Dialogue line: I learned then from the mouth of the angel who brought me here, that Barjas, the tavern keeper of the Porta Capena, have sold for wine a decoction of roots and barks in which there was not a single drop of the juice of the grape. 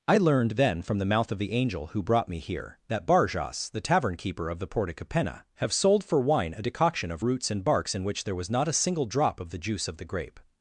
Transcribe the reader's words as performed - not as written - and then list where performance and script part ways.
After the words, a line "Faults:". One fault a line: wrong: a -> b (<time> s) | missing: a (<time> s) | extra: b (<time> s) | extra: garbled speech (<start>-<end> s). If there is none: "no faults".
I learned then from the mouth of the angel who brought me here, that Barjas, the tavern keeper of the Porta Capena, have sold for wine a decoction of roots and barks in which there was not a single drop of the juice of the grape.
Faults:
no faults